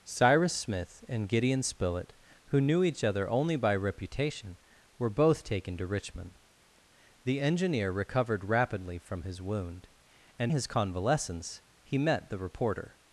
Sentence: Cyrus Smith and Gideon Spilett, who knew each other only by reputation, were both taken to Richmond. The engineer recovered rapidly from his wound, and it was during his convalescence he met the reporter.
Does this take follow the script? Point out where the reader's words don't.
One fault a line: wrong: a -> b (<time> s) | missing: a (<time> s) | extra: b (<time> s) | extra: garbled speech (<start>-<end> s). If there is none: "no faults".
missing: it was during (10.5 s)